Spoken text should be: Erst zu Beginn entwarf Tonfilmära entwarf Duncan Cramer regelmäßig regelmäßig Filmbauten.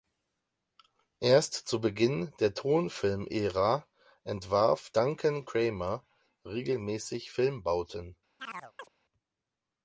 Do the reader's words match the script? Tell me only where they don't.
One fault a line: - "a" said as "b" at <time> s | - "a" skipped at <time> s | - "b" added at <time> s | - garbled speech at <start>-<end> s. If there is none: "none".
- "entwarf" said as "der" at 2.4 s
- "regelmäßig" skipped at 7.3 s